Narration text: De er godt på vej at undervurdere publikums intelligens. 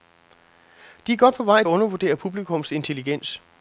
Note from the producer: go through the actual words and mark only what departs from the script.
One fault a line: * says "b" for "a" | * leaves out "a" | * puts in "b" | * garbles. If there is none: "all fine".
all fine